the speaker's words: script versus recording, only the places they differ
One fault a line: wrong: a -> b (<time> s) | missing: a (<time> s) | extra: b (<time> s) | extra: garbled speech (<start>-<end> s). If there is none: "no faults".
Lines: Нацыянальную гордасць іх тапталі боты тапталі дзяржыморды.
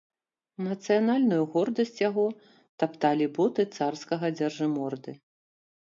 wrong: іх -> яго (2.1 s)
wrong: тапталі -> царскага (3.8 s)